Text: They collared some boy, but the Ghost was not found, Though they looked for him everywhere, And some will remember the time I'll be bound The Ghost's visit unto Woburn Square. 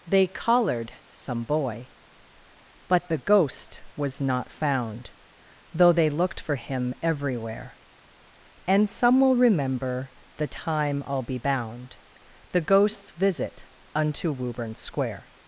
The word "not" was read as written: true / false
true